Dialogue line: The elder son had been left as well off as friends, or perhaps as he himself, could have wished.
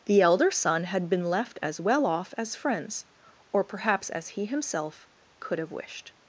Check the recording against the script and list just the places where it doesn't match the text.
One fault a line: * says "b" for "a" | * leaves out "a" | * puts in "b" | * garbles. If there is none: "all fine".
all fine